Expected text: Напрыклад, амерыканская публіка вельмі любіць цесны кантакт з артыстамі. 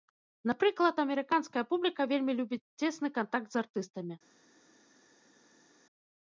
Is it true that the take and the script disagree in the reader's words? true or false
false